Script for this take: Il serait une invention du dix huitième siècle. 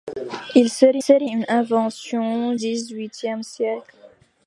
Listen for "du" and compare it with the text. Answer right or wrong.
wrong